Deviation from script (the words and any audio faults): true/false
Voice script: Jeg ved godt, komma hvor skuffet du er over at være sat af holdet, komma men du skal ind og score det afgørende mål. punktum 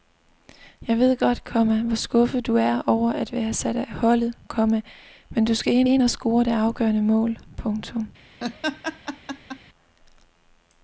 true